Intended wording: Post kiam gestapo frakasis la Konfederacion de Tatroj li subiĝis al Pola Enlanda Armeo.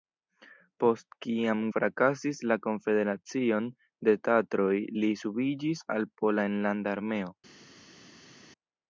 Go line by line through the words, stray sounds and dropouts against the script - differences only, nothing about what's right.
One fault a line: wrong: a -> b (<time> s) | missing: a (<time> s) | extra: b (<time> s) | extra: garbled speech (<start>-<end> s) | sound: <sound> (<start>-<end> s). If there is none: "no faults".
missing: gestapo (1.6 s)